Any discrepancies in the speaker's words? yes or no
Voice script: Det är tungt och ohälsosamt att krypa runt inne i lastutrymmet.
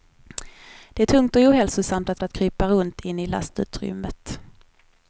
yes